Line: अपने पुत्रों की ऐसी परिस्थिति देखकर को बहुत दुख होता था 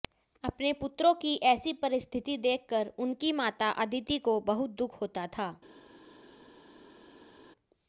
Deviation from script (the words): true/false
true